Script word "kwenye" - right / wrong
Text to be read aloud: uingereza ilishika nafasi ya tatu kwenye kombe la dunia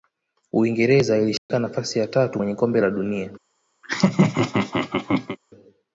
right